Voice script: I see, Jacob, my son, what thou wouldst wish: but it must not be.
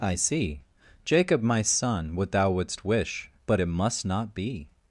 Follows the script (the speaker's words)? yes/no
yes